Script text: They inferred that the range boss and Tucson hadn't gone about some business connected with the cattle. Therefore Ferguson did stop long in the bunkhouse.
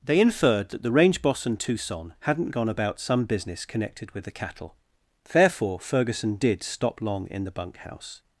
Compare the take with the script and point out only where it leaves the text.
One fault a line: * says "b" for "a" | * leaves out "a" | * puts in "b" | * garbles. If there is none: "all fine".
all fine